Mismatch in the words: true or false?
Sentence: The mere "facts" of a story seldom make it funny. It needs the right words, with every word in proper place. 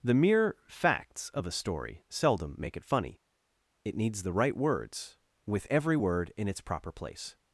true